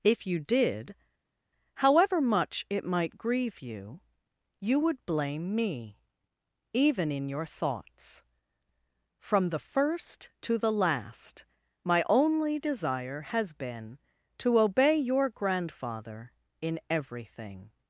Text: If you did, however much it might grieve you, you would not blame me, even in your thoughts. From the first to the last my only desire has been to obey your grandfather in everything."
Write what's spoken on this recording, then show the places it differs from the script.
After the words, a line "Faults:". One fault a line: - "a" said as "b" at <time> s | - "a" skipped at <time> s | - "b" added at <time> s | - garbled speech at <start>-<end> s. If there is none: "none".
If you did, however much it might grieve you, you would blame me, even in your thoughts. From the first to the last my only desire has been to obey your grandfather in everything."
Faults:
- "not" skipped at 5.1 s